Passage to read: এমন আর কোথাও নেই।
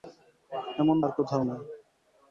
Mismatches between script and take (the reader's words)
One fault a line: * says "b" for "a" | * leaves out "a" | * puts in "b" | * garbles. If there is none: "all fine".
all fine